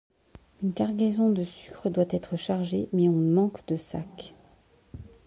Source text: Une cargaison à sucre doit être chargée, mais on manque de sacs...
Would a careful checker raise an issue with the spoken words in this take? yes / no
yes